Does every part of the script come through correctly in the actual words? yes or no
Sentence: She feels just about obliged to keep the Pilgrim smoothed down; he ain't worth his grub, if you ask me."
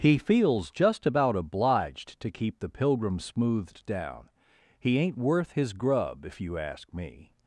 no